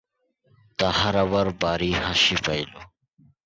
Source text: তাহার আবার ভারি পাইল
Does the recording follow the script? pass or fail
fail